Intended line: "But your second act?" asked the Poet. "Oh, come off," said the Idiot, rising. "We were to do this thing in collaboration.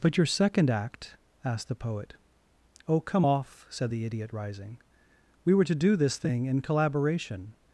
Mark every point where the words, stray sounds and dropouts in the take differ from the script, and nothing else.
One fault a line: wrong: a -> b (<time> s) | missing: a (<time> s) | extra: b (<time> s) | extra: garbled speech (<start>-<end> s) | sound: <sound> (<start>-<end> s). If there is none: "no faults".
no faults